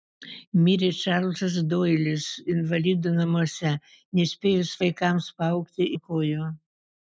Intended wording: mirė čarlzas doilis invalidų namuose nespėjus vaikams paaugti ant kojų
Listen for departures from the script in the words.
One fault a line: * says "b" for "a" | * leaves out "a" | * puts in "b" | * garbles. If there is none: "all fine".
all fine